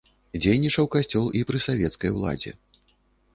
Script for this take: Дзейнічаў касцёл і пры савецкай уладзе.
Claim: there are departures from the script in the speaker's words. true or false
false